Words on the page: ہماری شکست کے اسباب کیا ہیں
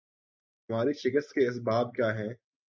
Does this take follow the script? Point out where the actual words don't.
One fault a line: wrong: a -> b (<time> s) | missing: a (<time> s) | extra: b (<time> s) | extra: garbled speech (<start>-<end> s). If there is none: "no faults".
no faults